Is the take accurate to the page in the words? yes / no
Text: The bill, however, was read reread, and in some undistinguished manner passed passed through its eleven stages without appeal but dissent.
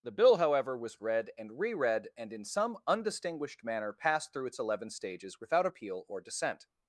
no